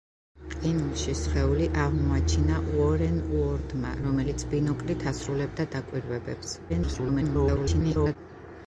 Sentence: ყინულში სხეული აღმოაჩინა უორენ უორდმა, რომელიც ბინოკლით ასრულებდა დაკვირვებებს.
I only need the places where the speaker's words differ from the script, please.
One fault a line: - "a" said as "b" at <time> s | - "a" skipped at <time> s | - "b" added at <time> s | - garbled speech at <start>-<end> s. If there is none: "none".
- garbled speech at 6.7-8.2 s